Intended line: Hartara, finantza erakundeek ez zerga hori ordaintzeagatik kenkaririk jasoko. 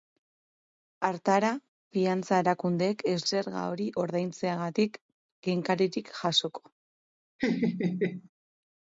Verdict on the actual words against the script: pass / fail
pass